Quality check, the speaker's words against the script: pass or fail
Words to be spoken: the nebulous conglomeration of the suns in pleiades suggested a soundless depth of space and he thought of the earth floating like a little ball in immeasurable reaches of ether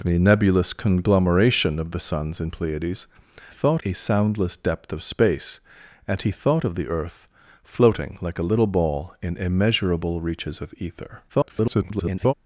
fail